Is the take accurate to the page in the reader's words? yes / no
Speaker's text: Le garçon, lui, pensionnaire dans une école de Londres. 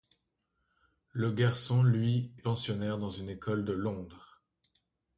yes